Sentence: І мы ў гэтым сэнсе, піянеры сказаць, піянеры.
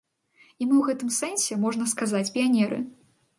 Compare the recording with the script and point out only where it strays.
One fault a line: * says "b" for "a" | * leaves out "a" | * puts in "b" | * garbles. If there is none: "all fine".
* says "можна" for "піянеры"